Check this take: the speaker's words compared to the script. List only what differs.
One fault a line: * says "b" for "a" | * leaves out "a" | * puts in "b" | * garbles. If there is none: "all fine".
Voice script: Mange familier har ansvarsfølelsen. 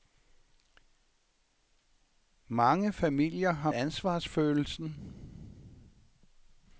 all fine